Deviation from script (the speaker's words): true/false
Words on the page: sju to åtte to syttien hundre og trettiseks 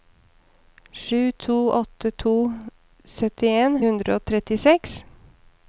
false